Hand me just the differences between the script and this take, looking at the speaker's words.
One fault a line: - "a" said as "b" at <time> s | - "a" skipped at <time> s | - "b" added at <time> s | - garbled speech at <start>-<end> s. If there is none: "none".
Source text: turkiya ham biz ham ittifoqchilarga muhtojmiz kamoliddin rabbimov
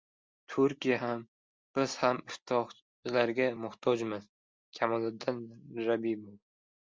none